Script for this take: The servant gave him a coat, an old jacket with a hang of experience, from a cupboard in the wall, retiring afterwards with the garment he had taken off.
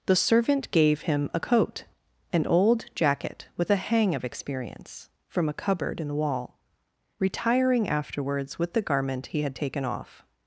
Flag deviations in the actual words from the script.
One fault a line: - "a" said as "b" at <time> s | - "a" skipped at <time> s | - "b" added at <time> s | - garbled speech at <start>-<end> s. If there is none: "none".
none